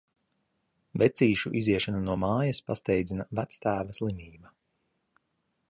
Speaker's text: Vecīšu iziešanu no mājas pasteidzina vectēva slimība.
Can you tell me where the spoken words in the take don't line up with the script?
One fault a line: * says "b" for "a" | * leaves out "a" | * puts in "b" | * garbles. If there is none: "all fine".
all fine